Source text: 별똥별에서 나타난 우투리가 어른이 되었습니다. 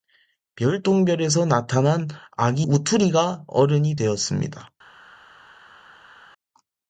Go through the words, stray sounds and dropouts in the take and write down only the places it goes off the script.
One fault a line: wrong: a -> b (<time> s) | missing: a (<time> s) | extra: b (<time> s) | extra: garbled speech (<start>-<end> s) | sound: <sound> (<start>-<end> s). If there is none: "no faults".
extra: 아기 (2.4 s)